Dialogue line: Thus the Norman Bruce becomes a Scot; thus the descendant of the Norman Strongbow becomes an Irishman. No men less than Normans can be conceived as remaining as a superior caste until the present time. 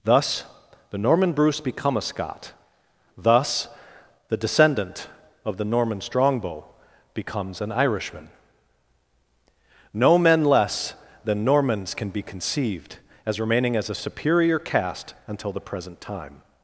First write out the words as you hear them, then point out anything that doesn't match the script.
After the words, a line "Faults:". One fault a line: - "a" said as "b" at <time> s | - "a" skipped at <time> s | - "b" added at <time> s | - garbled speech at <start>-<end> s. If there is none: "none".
Thus the Norman Bruce become a Scot; thus the descendant of the Norman Strongbow becomes an Irishman. No men less than Normans can be conceived as remaining as a superior caste until the present time.
Faults:
- "becomes" said as "become" at 1.6 s